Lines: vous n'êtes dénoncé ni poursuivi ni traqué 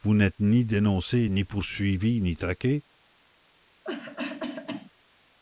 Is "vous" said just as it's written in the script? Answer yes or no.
yes